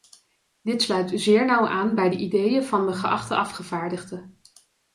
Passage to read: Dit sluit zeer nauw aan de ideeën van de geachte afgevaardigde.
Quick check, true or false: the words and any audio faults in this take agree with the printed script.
false